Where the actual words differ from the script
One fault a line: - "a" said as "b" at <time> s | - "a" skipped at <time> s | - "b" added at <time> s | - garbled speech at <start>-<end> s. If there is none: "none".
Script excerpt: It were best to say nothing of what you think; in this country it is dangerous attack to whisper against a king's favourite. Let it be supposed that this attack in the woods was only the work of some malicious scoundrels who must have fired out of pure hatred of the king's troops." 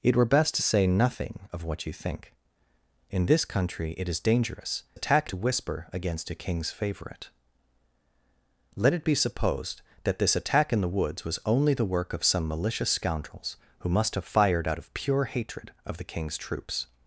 none